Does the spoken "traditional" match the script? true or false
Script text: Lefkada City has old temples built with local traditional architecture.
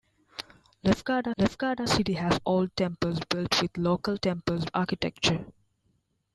false